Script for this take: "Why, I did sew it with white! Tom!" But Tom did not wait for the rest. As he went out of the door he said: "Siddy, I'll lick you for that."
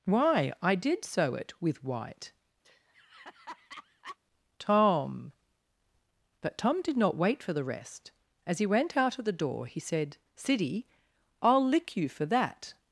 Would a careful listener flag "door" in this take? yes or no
no